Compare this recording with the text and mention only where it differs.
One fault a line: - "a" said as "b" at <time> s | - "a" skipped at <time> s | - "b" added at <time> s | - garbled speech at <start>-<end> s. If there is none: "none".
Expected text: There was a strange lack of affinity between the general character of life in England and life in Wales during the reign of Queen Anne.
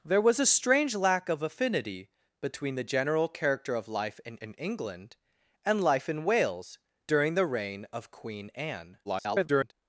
- "in" added at 4.4 s
- garbled speech at 9.0-9.7 s